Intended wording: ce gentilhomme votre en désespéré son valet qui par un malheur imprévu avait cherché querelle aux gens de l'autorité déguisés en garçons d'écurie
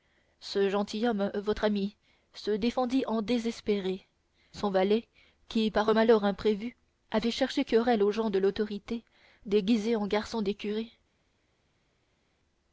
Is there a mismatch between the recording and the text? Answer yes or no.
yes